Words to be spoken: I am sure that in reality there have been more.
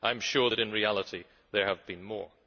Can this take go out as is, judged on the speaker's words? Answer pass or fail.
pass